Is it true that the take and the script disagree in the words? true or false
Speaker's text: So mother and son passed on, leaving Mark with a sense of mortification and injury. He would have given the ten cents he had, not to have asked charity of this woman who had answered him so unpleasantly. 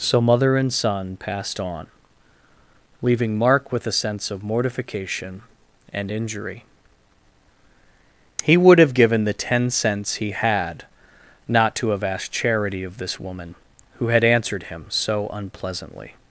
false